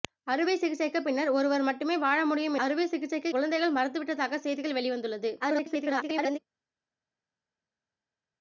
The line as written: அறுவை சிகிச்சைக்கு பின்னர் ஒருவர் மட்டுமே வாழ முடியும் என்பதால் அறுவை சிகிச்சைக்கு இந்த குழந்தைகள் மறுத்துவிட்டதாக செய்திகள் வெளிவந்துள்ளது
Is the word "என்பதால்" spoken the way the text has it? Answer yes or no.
no